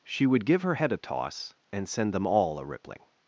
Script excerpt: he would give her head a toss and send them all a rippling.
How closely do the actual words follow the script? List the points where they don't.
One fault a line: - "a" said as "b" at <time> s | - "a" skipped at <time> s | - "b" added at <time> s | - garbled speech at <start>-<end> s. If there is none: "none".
- "he" said as "she" at 0.0 s